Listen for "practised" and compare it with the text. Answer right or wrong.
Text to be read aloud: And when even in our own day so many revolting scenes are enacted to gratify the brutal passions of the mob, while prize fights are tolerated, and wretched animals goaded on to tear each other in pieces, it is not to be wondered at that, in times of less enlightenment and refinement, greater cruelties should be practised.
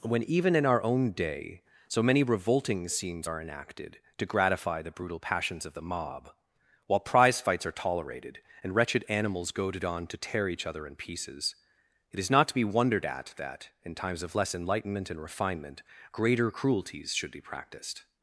wrong